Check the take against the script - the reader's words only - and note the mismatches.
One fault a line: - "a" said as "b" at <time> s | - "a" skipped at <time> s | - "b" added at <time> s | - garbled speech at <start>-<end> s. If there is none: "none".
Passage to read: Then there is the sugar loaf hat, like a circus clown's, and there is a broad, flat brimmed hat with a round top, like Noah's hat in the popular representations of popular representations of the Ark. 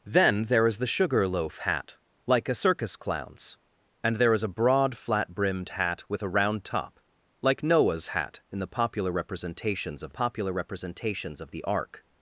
none